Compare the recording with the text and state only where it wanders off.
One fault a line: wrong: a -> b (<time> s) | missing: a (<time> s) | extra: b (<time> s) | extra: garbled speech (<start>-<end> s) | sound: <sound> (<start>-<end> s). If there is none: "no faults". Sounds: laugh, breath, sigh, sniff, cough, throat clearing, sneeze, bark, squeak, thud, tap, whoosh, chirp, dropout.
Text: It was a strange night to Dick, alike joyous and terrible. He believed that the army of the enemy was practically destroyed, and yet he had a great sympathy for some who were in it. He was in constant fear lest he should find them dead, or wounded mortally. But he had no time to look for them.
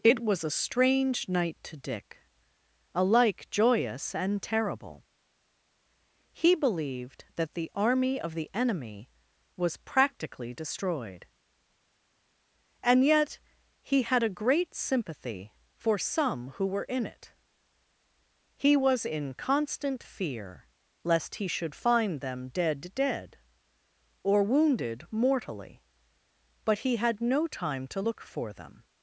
extra: dead (22.9 s)